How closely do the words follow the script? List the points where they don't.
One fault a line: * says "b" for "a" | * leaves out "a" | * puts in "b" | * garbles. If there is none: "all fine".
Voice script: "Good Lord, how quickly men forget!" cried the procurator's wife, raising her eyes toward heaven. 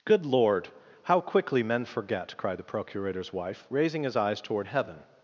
* says "his" for "her"